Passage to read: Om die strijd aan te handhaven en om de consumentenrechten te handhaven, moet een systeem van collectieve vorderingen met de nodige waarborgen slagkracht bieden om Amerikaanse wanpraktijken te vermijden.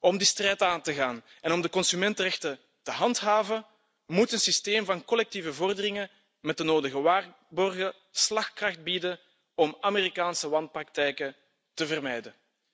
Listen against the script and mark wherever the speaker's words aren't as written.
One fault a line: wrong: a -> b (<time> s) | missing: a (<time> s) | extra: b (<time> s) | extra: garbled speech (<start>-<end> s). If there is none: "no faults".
wrong: handhaven -> gaan (0.9 s)